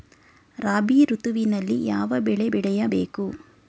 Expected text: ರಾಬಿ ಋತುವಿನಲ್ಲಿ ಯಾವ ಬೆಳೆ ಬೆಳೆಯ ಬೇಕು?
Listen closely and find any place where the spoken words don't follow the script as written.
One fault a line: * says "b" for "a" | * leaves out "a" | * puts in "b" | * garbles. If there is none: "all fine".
all fine